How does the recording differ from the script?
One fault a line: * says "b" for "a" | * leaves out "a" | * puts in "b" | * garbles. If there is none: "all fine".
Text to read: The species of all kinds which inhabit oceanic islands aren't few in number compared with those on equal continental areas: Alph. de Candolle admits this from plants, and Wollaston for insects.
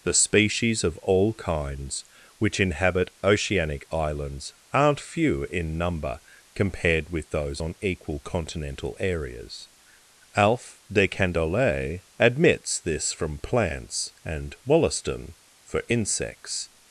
all fine